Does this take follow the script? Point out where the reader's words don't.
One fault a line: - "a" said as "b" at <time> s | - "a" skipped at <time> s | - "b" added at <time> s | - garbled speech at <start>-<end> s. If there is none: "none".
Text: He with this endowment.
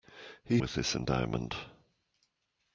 none